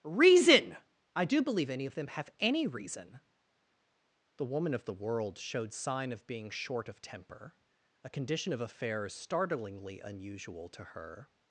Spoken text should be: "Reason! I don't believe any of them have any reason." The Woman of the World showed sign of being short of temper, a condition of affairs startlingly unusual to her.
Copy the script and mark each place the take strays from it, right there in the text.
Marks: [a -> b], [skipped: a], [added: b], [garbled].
"Reason! I [don't -> do] believe any of them have any reason." The Woman of the World showed sign of being short of temper, a condition of affairs startlingly unusual to her.